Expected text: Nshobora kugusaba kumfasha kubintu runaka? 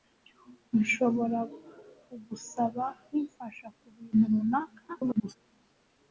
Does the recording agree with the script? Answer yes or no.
no